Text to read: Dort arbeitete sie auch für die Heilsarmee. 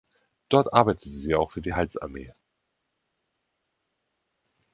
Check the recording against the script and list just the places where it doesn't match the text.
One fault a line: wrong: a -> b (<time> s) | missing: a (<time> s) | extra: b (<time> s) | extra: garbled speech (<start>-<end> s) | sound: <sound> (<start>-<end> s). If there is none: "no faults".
no faults